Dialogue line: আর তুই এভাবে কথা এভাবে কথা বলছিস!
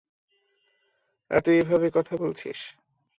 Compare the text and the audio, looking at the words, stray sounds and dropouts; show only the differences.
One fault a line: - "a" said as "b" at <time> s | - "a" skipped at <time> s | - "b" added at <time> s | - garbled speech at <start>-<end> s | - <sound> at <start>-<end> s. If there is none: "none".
- "এভাবে কথা" skipped at 2.1 s